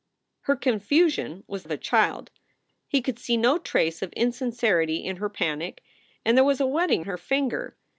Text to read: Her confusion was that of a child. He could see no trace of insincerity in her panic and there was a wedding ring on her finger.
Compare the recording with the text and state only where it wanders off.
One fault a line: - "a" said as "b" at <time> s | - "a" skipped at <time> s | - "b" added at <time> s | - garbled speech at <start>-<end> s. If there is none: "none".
- "that" skipped at 1.6 s
- "ring on" skipped at 7.1 s